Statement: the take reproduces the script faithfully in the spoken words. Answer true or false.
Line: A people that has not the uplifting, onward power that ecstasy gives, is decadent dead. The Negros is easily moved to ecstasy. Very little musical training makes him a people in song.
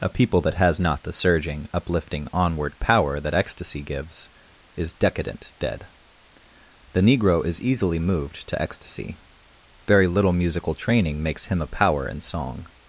false